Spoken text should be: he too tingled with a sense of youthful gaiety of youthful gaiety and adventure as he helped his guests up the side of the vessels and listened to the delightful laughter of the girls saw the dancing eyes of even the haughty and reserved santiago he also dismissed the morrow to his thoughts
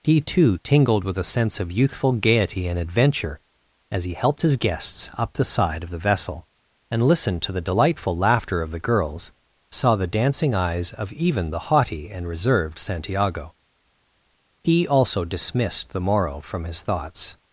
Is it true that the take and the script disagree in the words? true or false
true